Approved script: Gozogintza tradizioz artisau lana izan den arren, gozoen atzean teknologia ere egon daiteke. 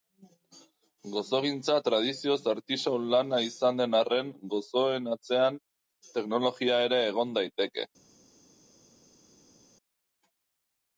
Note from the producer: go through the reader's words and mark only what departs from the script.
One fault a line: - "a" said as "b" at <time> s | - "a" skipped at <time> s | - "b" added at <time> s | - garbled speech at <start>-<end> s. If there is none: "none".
none